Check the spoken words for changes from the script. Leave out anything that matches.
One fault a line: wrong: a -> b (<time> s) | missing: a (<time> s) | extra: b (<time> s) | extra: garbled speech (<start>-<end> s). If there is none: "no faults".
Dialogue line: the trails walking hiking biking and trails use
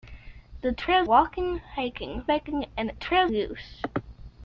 no faults